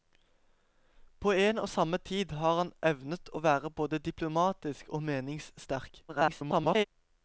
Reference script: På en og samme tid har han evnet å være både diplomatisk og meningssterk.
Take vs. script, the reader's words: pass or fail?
fail